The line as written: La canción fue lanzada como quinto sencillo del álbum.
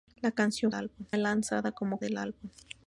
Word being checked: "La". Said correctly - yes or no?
yes